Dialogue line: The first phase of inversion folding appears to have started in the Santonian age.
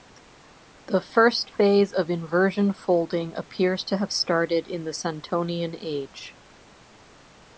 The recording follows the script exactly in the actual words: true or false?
true